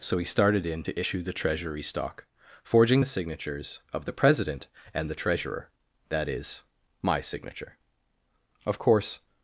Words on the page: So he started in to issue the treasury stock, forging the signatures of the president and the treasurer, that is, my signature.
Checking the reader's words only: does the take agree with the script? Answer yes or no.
no